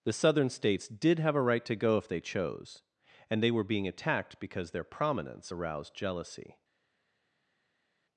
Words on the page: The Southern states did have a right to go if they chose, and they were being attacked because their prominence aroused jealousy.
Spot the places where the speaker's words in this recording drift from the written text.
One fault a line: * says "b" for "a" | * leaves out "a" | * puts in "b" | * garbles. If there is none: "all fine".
all fine